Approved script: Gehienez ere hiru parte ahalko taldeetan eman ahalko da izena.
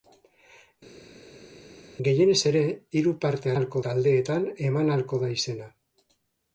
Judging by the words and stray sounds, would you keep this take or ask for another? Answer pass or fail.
pass